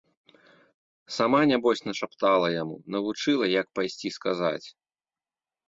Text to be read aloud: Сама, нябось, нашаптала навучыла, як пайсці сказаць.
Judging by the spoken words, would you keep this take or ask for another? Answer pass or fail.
fail